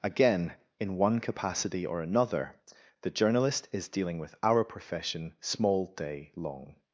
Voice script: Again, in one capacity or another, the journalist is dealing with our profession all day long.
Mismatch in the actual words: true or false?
true